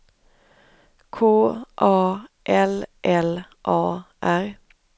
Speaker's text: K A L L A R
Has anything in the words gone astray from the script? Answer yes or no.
no